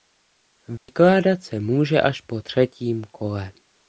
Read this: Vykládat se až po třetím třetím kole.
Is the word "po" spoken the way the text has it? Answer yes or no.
yes